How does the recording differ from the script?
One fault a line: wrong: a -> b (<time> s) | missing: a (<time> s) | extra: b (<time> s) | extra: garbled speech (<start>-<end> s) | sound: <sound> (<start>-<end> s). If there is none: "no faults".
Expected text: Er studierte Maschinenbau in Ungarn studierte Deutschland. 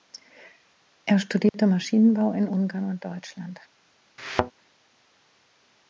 sound: dropout (1.5-1.5 s)
wrong: studierte -> und (2.8 s)
sound: thud (4.2-4.5 s)